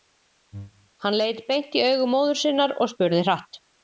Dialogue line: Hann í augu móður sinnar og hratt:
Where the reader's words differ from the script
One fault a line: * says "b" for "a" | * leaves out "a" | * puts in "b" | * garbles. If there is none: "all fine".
* puts in "leit beint"
* puts in "spurði"